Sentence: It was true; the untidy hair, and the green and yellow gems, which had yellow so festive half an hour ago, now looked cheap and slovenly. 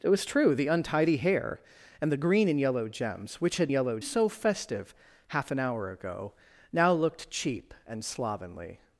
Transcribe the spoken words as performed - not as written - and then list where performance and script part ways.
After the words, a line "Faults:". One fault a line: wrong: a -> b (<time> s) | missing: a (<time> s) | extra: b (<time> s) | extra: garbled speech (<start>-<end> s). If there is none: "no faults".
It was true; the untidy hair, and the green and yellow gems, which had yellow so festive half an hour ago, now looked cheap and slovenly.
Faults:
no faults